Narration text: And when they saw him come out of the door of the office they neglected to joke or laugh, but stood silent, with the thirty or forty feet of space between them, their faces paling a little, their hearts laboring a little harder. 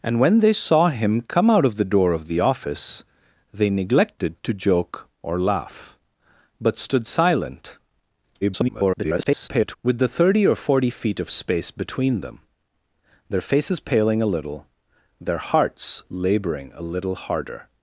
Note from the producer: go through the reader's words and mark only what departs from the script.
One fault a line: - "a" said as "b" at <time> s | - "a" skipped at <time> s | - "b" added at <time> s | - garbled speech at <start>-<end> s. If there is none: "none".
- garbled speech at 8.4-9.8 s